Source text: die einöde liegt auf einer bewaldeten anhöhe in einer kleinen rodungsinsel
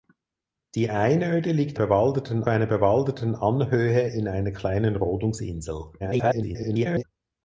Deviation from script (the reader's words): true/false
true